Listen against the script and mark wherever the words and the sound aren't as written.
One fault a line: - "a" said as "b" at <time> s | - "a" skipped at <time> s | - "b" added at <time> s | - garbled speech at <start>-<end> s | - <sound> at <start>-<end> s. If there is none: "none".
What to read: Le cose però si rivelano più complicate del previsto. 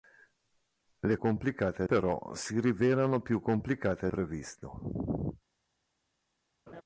- "cose" said as "complicate" at 1.2 s
- "del" skipped at 4.1 s
- laugh at 6.7-6.8 s